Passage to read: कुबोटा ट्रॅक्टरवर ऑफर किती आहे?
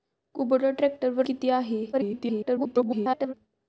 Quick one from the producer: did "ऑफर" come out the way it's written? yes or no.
no